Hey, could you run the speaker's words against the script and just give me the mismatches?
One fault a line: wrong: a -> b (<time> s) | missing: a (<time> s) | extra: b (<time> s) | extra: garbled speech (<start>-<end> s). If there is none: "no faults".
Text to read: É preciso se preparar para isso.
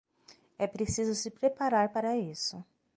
no faults